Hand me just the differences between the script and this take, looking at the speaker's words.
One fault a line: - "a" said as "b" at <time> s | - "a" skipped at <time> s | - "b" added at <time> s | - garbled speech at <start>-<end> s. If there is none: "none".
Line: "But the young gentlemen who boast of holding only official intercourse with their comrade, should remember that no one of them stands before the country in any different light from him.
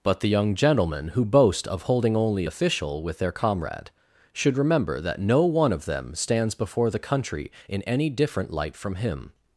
- "intercourse" skipped at 3.0 s